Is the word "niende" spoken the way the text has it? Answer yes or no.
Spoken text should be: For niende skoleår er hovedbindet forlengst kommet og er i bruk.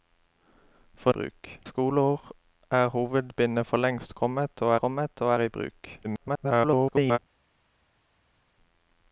no